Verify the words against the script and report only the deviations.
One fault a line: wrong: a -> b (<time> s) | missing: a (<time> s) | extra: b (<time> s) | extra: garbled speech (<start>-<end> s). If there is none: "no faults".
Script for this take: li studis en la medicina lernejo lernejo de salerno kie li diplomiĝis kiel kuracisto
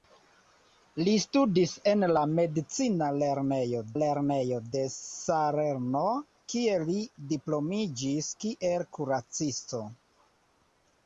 no faults